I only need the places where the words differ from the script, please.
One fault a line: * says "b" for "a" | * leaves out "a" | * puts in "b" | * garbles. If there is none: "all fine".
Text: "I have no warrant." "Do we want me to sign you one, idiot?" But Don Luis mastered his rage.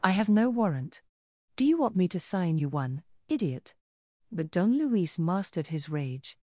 * says "you" for "we"